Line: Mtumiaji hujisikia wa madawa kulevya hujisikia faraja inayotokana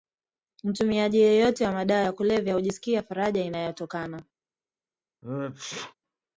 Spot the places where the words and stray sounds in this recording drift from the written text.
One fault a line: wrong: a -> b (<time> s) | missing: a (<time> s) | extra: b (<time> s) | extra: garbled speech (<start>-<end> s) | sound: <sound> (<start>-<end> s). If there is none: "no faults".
wrong: hujisikia -> yeyote (1.2 s)
extra: ya (2.0 s)
sound: sneeze (5.2-5.9 s)